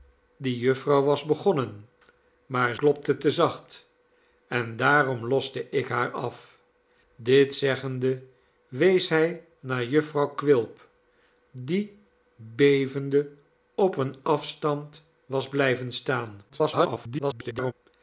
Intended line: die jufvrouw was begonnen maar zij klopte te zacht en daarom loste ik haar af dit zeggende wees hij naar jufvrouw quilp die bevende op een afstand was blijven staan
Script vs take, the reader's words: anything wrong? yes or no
yes